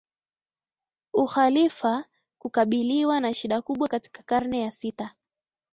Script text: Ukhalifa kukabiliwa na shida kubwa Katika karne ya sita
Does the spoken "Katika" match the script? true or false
true